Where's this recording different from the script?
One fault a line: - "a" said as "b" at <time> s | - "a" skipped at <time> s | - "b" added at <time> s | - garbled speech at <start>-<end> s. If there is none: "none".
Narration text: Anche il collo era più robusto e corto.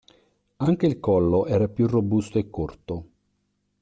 none